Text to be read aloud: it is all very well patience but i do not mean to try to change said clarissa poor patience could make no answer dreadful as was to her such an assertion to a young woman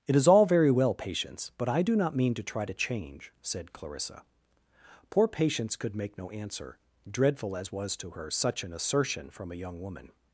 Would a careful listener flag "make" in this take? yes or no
no